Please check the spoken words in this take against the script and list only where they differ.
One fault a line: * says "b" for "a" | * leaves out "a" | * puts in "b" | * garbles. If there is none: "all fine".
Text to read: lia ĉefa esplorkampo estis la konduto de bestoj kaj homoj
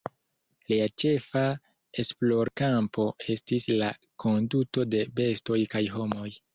all fine